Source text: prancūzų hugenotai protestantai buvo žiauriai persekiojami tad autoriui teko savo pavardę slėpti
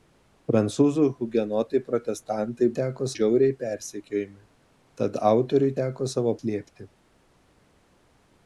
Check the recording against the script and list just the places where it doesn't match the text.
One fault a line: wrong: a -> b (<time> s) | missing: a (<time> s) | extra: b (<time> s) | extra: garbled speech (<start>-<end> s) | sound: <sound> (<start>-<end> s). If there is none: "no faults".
wrong: buvo -> teko (2.8 s)
missing: pavardę (6.4 s)